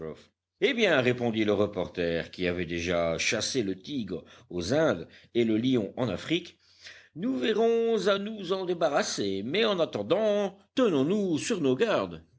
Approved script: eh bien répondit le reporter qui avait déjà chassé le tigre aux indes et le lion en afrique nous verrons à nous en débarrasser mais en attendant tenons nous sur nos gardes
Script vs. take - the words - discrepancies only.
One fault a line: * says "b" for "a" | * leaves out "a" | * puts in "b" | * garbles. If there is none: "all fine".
all fine